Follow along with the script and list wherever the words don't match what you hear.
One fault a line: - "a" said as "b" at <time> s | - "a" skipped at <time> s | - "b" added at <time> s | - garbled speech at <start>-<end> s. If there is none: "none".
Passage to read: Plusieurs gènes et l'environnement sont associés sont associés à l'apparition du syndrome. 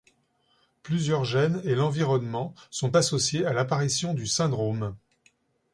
- "sont associés" skipped at 3.4 s